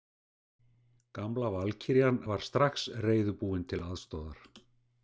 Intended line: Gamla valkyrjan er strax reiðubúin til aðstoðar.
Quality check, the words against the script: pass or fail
fail